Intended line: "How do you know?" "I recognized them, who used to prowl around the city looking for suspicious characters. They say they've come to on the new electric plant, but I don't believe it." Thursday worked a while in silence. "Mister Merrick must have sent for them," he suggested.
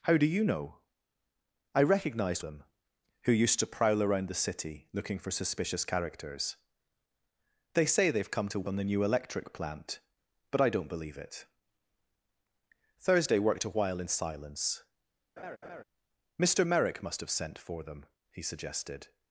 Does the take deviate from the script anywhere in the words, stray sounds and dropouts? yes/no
yes